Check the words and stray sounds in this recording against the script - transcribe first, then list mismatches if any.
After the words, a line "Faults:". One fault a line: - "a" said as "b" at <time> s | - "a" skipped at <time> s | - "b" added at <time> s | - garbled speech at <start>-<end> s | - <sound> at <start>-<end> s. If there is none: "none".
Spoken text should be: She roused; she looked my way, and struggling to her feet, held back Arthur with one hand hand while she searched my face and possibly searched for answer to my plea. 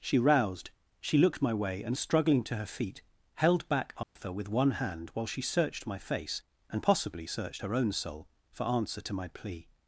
She roused; she looked my way, and struggling to her feet, held back Arthur with one hand while she searched my face and possibly searched her own soul for answer to my plea.
Faults:
- dropout at 4.0-4.2 s
- "hand" skipped at 5.1 s
- "her own soul" added at 7.6 s